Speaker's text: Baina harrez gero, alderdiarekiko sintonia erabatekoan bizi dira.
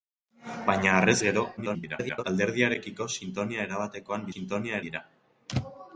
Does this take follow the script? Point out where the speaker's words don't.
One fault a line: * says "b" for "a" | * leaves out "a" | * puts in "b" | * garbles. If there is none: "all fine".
* garbles
* says "sintonia" for "bizi"